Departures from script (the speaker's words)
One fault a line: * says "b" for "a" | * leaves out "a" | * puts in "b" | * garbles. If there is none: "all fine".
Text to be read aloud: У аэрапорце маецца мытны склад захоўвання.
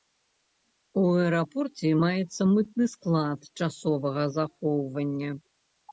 * puts in "часовага"